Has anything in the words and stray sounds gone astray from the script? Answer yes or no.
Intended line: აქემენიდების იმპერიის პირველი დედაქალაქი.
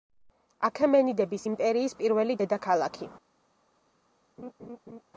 yes